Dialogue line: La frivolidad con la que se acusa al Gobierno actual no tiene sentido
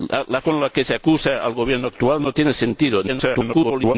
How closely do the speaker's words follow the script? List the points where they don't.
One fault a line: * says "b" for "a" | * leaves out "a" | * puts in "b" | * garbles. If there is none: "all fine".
* leaves out "frivolidad"
* garbles